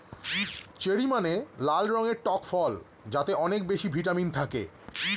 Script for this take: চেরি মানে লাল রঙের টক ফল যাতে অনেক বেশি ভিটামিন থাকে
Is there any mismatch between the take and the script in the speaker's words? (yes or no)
no